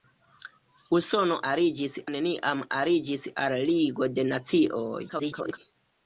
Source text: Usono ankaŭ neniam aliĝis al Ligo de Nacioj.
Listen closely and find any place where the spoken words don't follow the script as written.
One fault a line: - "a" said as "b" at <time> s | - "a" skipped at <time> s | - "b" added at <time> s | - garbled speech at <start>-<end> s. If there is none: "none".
- "ankaŭ" said as "aliĝis" at 1.5 s
- garbled speech at 5.1-5.6 s